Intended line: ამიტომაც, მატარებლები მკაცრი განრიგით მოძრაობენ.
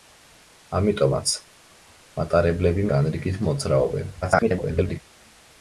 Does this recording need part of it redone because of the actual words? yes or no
yes